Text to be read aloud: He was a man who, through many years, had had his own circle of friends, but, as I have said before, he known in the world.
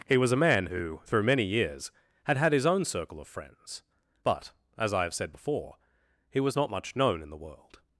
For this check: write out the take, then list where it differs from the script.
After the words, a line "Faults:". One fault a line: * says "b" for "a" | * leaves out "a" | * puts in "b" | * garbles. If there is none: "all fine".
He was a man who, through many years, had had his own circle of friends, but, as I have said before, he was not much known in the world.
Faults:
* puts in "was not much"